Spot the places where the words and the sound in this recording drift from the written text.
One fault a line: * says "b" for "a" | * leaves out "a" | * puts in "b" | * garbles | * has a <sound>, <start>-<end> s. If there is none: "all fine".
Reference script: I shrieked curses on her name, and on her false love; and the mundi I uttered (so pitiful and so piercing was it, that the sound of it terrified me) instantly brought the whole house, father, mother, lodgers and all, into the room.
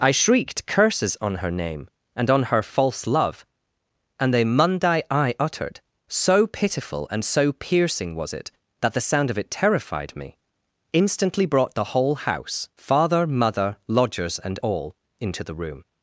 all fine